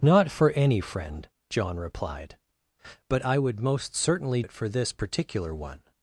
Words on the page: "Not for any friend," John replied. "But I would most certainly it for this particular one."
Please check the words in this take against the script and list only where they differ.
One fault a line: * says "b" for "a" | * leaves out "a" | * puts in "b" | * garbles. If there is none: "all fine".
all fine